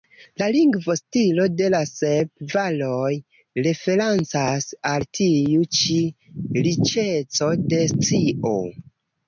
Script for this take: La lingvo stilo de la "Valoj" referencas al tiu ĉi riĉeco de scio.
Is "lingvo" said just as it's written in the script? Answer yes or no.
yes